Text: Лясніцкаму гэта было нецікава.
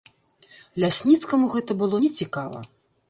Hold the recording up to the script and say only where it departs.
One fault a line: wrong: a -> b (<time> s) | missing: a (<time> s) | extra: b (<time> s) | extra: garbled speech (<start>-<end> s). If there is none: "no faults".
no faults